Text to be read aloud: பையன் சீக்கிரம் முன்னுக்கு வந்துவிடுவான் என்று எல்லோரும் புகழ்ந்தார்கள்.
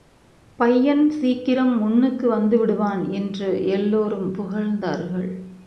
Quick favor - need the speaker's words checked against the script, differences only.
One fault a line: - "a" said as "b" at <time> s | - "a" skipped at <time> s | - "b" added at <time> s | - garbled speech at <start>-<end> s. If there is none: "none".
none